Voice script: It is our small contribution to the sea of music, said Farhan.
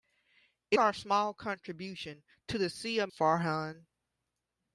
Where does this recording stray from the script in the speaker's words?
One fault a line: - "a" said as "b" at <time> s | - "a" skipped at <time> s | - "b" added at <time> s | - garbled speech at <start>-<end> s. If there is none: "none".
- "is" skipped at 0.8 s
- "music said" skipped at 3.1 s